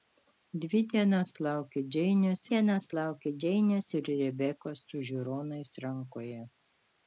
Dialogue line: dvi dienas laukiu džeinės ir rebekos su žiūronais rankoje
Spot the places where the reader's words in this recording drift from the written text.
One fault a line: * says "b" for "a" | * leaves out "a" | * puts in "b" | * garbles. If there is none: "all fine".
* puts in "dienas laukiu džeinės"